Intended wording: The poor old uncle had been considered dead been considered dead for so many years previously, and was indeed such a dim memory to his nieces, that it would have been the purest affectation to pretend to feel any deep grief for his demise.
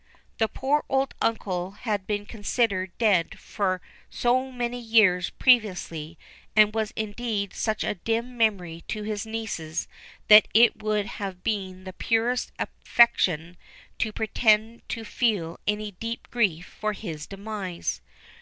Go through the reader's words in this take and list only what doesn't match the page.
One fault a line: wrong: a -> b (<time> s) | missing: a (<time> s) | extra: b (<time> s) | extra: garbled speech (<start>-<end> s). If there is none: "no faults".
missing: been considered dead (3.4 s)